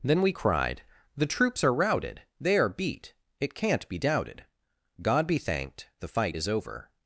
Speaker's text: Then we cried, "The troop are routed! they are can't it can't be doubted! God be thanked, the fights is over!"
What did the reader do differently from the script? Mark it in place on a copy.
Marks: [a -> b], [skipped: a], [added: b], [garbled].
Then we cried, "The [troop -> troops] are routed! they are [can't -> beat] it can't be doubted! God be thanked, the [fights -> fight] is over!"